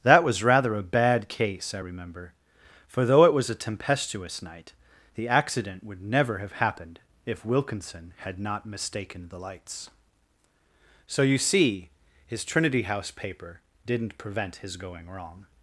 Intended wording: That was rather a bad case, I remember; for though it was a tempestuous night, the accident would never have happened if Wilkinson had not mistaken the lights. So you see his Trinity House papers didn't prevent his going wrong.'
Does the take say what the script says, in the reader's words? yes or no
no